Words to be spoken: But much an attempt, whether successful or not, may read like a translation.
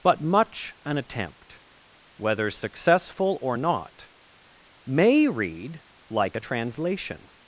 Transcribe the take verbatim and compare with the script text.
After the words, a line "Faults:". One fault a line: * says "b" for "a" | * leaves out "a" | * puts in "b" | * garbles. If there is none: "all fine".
But much an attempt, whether successful or not, may read like a translation.
Faults:
all fine